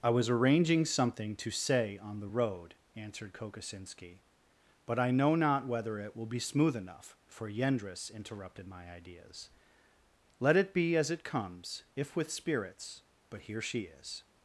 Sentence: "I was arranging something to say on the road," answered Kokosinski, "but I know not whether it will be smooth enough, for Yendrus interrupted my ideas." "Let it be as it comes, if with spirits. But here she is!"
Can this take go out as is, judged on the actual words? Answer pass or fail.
pass